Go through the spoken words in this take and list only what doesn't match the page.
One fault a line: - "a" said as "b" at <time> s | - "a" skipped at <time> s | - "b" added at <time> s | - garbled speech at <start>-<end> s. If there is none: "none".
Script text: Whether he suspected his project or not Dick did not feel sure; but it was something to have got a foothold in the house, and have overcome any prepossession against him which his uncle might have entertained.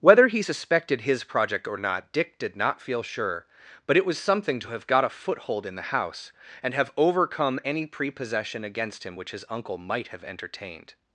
none